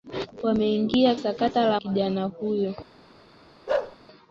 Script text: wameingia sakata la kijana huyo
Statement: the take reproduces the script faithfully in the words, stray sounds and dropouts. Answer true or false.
false